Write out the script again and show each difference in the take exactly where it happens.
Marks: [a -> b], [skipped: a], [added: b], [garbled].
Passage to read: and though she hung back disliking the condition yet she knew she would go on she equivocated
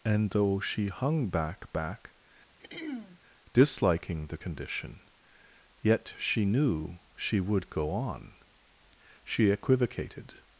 and though she hung back [added: back] disliking the condition yet she knew she would go on she equivocated